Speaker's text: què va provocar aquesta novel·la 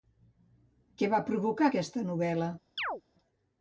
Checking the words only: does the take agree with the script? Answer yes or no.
yes